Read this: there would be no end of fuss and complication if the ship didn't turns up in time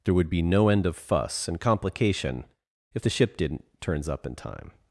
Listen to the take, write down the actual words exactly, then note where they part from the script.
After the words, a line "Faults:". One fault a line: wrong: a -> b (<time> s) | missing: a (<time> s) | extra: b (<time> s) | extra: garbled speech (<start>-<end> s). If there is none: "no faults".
there would be no end of fuss and complication if the ship didn't turns up in time
Faults:
no faults